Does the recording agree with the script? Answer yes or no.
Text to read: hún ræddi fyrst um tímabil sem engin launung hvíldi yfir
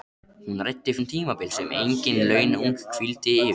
no